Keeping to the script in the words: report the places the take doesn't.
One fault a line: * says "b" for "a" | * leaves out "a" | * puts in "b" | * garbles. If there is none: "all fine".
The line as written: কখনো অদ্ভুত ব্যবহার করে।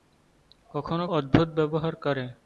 all fine